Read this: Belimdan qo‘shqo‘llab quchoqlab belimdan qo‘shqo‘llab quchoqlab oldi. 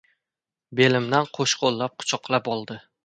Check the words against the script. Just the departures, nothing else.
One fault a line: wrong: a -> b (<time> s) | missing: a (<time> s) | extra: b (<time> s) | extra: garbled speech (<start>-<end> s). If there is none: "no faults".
missing: belimdan qo‘shqo‘llab quchoqlab (2.5 s)